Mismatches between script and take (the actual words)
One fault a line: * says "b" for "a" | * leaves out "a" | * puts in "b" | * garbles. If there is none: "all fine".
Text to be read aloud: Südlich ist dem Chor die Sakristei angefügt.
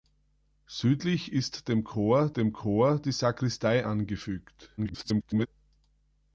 * puts in "dem Chor"
* garbles